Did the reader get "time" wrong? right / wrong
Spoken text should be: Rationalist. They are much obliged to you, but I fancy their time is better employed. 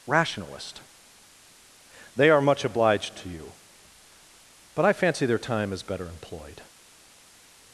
right